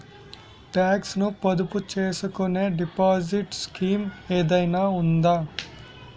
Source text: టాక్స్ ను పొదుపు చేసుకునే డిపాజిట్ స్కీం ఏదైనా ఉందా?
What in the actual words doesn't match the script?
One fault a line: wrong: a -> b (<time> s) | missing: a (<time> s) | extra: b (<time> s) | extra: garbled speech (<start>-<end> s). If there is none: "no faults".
no faults